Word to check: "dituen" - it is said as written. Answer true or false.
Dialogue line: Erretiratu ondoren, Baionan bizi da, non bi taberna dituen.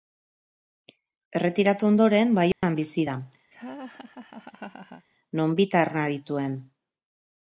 true